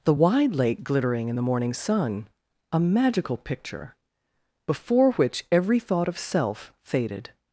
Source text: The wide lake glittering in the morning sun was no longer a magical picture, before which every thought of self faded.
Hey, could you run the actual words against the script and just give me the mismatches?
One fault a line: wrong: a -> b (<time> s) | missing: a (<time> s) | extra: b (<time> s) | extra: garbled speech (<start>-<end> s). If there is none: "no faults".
missing: was no longer (2.3 s)